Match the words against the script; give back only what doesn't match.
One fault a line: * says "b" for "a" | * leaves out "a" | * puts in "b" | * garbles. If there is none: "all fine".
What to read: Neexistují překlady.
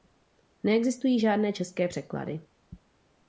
* puts in "žádné české"